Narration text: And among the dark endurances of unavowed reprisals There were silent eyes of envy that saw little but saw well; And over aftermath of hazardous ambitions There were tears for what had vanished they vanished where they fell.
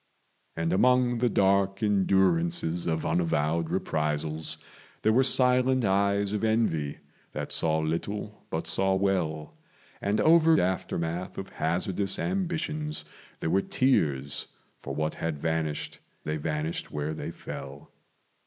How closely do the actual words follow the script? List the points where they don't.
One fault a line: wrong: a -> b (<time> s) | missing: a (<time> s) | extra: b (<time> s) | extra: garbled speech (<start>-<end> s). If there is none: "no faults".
no faults